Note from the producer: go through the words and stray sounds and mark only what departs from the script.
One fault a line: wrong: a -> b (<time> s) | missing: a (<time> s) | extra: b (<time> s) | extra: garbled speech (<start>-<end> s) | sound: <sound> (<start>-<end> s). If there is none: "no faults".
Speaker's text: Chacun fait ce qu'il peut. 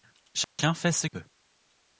sound: dropout (0.4-0.6 s)
missing: qu'il (1.1 s)